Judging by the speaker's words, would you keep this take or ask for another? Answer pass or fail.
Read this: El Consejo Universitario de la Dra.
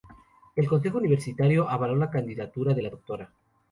fail